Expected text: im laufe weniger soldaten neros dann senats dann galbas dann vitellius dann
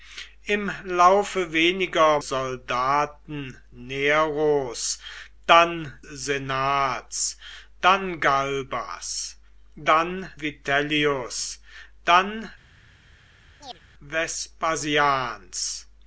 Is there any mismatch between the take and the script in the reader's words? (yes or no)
no